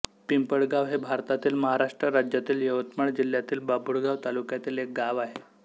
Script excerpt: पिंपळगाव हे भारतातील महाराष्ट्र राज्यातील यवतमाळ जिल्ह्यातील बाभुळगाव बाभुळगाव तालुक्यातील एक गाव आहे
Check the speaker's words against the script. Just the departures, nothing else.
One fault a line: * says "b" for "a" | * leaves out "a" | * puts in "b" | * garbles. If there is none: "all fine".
* leaves out "बाभुळगाव"